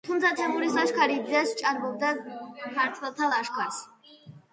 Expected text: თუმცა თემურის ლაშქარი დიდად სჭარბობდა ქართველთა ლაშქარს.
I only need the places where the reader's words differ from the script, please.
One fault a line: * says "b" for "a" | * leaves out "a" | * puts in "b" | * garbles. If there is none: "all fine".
all fine